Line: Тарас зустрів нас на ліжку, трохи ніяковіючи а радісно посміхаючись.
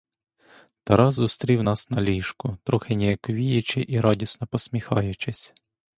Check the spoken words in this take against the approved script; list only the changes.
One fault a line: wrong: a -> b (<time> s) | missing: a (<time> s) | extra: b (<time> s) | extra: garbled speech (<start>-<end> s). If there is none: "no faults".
wrong: а -> і (3.9 s)